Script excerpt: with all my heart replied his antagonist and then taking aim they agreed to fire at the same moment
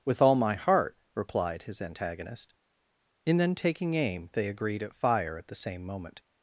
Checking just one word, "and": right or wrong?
wrong